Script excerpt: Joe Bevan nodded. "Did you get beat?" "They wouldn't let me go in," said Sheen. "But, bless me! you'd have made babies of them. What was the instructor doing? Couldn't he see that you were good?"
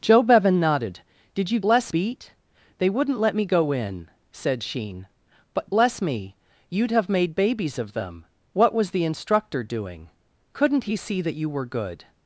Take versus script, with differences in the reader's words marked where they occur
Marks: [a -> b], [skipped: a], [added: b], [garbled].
Joe Bevan nodded. "Did you [get -> bless] beat?" "They wouldn't let me go in," said Sheen. "But, bless me! you'd have made babies of them. What was the instructor doing? Couldn't he see that you were good?"